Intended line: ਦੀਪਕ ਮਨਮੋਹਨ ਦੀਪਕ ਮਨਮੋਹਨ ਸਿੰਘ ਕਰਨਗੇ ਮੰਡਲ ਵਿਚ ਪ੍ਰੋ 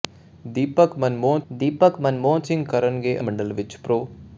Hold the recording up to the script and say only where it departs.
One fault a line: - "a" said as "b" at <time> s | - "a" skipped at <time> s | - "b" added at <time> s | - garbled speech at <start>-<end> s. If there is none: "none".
none